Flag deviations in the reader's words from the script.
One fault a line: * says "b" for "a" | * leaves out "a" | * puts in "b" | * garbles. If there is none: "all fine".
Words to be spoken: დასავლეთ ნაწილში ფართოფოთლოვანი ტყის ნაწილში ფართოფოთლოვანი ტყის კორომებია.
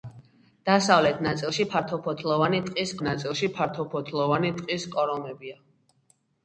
all fine